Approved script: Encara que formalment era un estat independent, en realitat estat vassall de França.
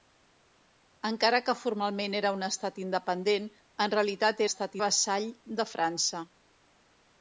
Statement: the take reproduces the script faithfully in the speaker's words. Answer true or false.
true